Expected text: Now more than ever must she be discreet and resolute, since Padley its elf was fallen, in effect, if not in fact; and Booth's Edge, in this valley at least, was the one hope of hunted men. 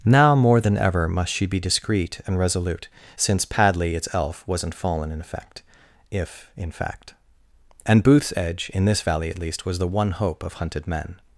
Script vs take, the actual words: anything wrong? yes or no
yes